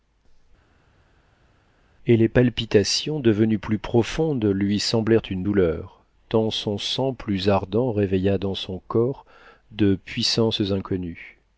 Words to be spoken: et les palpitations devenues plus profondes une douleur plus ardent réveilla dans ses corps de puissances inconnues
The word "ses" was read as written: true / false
false